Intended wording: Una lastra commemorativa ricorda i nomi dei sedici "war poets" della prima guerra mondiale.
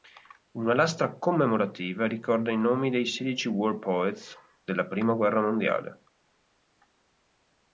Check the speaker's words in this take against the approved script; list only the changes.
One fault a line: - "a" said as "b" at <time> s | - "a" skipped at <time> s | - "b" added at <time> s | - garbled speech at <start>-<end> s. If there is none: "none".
none